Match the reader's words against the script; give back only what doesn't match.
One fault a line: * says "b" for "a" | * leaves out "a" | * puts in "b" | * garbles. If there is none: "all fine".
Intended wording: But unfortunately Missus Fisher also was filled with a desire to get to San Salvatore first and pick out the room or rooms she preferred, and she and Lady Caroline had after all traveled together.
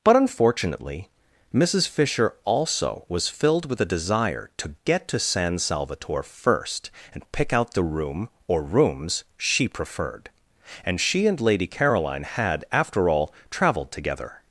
all fine